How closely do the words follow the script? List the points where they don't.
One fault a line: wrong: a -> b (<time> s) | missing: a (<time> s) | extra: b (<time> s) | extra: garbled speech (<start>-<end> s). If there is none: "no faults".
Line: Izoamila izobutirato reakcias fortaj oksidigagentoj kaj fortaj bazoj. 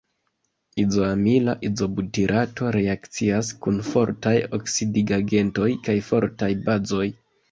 extra: kun (3.6 s)